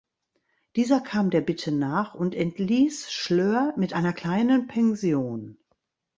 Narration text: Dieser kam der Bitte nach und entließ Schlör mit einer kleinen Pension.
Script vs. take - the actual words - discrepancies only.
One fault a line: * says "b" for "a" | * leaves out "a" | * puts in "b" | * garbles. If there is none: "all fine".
all fine